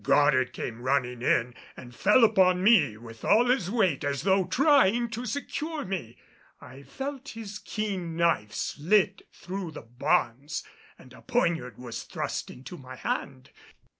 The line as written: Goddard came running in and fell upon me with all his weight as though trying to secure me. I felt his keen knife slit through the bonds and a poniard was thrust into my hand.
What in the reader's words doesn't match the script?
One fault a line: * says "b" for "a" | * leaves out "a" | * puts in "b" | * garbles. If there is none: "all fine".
all fine